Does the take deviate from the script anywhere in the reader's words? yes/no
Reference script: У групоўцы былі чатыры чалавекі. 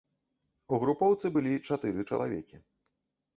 no